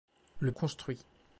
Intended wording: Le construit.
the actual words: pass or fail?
pass